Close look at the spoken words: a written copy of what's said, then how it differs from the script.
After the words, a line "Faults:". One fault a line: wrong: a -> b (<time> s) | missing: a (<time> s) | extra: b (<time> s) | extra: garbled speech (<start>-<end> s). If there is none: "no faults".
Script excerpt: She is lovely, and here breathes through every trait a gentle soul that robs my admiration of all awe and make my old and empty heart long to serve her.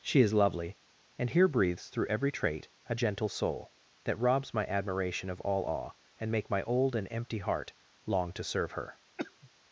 She is lovely, and here breathes through every trait a gentle soul that robs my admiration of all awe and make my old and empty heart long to serve her.
Faults:
no faults